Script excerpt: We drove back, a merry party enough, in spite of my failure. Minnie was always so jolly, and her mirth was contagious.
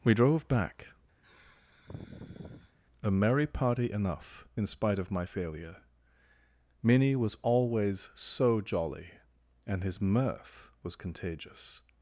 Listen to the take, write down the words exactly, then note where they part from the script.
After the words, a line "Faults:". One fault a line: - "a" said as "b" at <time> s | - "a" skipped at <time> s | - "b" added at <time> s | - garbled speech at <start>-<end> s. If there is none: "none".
We drove back, a merry party enough, in spite of my failure. Minnie was always so jolly, and his mirth was contagious.
Faults:
- "her" said as "his" at 9.8 s